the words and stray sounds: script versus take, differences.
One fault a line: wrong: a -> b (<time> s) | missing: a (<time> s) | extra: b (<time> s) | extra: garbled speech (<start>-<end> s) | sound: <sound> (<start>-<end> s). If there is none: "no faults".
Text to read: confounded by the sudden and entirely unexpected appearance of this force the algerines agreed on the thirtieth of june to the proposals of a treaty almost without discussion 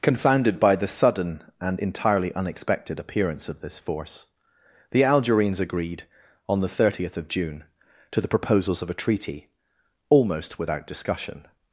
no faults